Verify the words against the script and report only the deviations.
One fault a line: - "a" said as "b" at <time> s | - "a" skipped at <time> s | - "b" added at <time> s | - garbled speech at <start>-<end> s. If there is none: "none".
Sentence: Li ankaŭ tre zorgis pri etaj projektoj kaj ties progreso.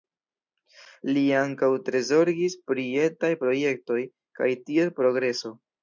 none